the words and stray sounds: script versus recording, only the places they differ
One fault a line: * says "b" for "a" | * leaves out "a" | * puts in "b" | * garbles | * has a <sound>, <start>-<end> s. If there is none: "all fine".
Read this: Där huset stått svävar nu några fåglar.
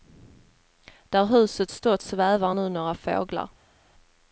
all fine